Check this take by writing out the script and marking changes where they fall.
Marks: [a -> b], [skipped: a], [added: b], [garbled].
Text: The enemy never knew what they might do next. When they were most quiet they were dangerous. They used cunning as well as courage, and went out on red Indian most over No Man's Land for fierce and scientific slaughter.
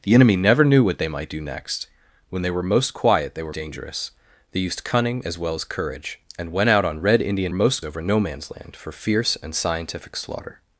The enemy never knew what they might do next. When they were most quiet they were dangerous. They used cunning as well as courage, and went out on red Indian most over No Man's Land for fierce and scientific slaughter.